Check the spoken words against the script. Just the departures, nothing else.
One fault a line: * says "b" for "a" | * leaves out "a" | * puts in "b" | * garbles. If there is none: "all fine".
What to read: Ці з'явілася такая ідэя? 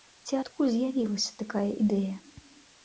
* puts in "адкуль"